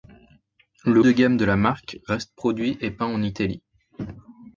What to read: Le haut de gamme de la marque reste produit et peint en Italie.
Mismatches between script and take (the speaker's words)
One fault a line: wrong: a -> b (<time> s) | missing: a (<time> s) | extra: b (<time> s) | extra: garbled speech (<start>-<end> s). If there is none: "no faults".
missing: haut (1.0 s)